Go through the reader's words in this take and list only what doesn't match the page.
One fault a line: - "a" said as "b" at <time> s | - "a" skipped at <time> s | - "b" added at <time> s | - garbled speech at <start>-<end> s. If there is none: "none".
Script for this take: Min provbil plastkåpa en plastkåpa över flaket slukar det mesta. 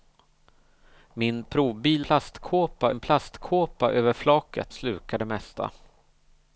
none